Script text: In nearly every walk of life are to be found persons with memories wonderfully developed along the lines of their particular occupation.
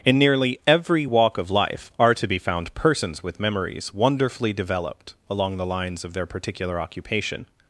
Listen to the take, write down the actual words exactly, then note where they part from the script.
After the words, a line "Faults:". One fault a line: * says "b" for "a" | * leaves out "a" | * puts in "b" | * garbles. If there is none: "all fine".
In nearly every walk of life are to be found persons with memories wonderfully developed along the lines of their particular occupation.
Faults:
all fine